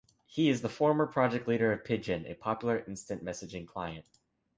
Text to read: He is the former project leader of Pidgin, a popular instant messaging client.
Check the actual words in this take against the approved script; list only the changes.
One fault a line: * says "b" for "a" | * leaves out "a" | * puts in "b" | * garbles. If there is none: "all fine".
all fine